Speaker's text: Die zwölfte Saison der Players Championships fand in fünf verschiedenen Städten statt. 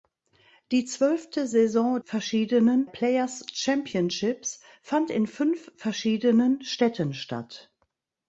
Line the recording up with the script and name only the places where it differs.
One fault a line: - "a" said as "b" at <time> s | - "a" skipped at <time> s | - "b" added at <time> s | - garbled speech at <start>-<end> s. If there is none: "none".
- "der" said as "verschiedenen" at 2.0 s